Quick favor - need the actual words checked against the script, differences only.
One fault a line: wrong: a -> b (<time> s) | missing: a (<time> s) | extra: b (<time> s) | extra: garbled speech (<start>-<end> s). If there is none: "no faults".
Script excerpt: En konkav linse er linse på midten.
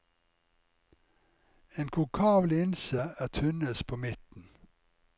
wrong: linse -> tynnest (3.3 s)